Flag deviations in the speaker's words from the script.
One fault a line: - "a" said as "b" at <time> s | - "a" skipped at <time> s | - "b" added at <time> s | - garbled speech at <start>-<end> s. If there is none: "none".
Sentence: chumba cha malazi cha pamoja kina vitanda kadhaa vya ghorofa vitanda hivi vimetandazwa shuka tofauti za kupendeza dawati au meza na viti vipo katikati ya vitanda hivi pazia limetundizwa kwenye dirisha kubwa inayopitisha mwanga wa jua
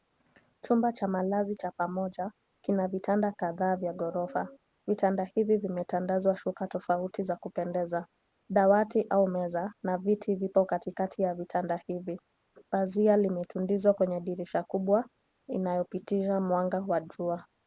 none